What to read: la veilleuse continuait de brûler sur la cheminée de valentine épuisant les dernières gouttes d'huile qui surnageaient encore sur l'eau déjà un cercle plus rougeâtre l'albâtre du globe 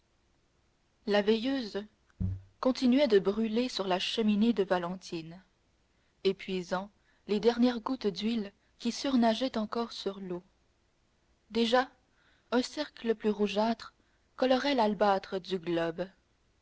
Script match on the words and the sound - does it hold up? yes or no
no